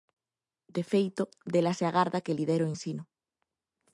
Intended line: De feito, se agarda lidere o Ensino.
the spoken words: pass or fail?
fail